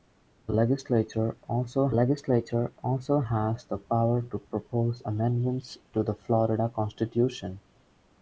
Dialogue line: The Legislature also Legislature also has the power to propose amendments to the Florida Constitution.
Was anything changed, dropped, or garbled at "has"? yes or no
no